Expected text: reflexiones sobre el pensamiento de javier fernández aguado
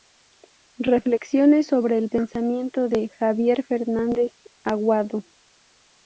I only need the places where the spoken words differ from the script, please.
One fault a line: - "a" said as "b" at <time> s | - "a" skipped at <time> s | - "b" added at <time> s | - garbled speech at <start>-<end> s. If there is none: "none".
none